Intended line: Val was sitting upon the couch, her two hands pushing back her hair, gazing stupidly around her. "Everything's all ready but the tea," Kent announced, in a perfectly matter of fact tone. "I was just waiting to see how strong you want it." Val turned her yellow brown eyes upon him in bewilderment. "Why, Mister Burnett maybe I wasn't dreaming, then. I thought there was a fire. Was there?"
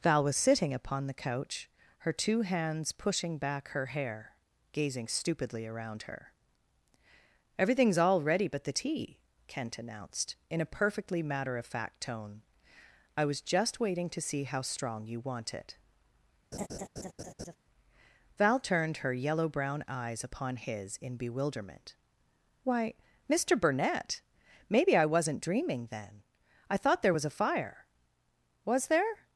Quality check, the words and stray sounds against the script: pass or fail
fail